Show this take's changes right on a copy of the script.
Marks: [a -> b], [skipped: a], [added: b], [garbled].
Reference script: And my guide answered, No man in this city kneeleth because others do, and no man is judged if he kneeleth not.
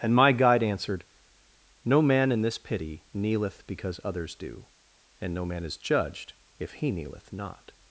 And my guide answered, No man in this [city -> pity] kneeleth because others do, and no man is judged if he kneeleth not.